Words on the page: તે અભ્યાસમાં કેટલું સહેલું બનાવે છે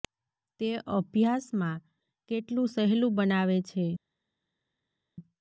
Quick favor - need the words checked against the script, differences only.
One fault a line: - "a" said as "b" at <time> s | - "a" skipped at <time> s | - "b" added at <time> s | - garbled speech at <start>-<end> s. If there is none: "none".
none